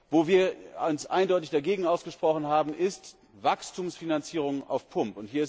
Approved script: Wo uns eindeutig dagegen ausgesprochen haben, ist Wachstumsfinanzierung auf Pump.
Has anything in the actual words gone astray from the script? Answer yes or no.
yes